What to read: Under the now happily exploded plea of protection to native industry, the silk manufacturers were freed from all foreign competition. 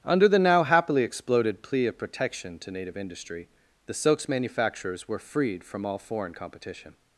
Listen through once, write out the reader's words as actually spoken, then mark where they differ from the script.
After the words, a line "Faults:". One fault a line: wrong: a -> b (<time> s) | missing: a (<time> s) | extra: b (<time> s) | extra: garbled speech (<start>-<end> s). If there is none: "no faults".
Under the now happily exploded plea of protection to native industry, the silks manufacturers were freed from all foreign competition.
Faults:
wrong: silk -> silks (3.9 s)